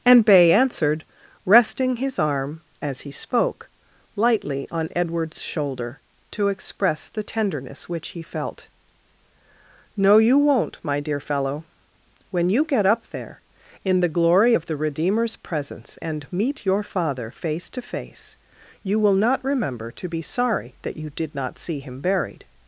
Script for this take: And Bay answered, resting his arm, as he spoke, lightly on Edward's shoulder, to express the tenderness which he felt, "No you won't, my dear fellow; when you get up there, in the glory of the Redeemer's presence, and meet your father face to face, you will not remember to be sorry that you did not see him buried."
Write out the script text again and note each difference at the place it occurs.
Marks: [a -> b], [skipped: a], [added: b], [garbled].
And Bay answered, resting his arm, as he spoke, lightly on Edward's shoulder, to express the tenderness which he felt, "No you won't, my dear fellow; when you get up there, in the glory of the Redeemer's presence, and meet your father face to face, you will not remember to be sorry that you did not see him buried."